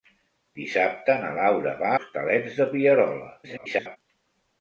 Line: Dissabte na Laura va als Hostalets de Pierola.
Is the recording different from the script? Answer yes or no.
yes